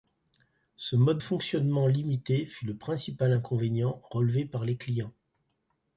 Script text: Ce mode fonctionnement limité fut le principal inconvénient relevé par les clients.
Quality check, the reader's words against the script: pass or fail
pass